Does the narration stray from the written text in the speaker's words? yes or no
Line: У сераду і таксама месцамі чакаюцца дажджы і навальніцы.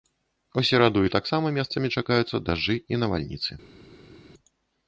no